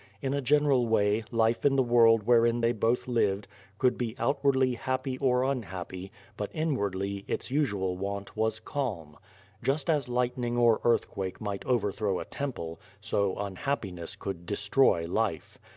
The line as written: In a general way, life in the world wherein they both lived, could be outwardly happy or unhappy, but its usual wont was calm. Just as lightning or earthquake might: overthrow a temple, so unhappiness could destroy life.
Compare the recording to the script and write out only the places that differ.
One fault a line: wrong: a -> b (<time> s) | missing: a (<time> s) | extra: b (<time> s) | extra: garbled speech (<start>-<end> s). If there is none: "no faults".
extra: inwardly (6.5 s)